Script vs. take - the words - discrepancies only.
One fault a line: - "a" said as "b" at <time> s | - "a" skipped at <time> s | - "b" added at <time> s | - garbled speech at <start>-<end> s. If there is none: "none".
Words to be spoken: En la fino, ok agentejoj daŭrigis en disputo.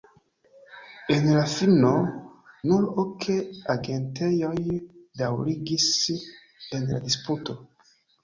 - "nur" added at 2.7 s
- "la" added at 6.9 s